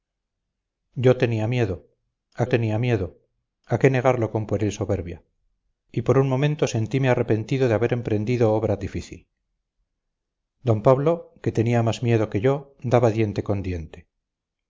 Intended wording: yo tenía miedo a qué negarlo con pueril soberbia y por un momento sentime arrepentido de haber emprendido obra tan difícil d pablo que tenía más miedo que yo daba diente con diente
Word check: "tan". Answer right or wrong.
wrong